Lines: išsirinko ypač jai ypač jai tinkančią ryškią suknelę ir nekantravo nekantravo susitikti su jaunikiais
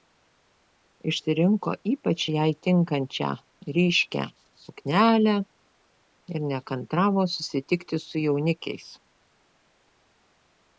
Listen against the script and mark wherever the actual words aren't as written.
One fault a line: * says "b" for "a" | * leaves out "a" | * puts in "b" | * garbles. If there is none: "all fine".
* leaves out "ypač jai"
* leaves out "nekantravo"